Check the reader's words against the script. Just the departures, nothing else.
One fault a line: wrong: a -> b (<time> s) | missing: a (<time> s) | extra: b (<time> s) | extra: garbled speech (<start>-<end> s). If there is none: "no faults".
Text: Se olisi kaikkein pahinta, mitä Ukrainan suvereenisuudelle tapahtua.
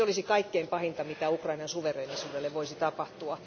extra: voisi (2.5 s)